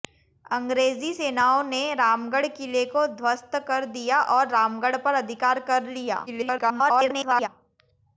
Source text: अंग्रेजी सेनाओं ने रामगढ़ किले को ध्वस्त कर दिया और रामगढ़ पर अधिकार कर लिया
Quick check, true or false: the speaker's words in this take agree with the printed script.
false